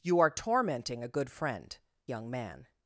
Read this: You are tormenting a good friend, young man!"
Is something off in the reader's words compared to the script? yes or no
no